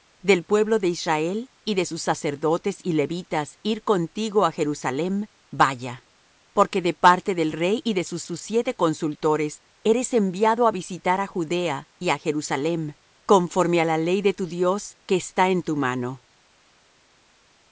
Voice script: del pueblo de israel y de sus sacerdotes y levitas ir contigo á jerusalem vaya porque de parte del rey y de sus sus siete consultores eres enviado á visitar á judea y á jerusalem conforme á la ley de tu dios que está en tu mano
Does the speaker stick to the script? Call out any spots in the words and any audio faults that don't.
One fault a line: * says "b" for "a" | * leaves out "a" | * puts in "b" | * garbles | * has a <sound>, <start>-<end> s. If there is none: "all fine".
all fine